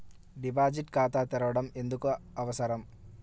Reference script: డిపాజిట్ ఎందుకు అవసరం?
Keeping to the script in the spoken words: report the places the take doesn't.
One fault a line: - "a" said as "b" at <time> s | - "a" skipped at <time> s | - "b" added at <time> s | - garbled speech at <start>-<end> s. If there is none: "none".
- "ఖాతా తెరవడం" added at 0.9 s